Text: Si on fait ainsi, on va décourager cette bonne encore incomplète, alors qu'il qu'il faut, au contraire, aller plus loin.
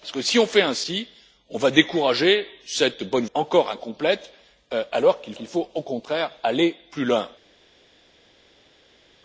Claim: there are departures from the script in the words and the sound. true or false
false